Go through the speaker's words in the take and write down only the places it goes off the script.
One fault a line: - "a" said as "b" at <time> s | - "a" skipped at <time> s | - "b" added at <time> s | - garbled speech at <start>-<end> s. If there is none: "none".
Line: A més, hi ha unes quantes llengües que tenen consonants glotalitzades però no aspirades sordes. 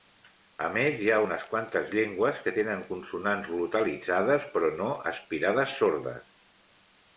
none